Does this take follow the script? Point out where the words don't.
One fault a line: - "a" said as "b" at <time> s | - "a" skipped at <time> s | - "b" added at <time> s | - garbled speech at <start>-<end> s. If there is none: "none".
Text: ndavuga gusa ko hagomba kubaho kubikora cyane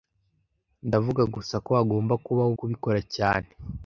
none